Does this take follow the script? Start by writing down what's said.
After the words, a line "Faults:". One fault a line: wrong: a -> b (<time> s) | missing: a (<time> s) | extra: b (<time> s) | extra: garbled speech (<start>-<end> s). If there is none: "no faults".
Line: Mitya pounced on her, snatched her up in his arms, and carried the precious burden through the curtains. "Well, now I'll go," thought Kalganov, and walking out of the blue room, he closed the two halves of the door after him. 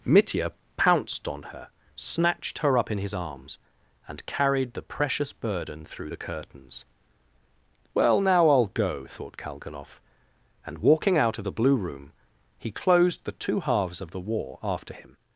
Mitya pounced on her, snatched her up in his arms, and carried the precious burden through the curtains. "Well, now I'll go," thought Kalganov, and walking out of the blue room, he closed the two halves of the war after him.
Faults:
wrong: door -> war (14.2 s)